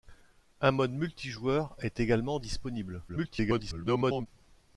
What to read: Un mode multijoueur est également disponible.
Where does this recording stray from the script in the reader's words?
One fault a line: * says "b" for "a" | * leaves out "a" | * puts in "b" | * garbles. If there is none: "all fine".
* garbles